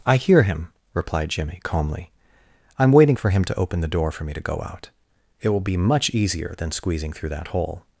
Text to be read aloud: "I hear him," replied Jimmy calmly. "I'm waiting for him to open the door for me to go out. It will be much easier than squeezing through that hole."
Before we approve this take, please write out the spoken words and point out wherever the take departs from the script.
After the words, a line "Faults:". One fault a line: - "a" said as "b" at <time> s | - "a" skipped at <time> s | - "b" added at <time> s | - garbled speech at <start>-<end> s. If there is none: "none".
"I hear him," replied Jimmy calmly. "I'm waiting for him to open the door for me to go out. It will be much easier than squeezing through that hole."
Faults:
none